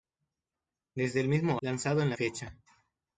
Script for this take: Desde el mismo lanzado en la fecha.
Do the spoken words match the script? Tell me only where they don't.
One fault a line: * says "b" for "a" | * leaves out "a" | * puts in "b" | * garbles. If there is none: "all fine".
all fine